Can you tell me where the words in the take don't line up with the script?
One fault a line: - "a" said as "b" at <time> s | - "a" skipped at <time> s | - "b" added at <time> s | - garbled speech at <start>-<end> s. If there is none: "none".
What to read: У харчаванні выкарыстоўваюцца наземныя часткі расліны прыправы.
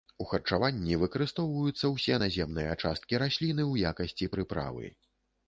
- "ўсе" added at 2.0 s
- "ў якасці" added at 3.7 s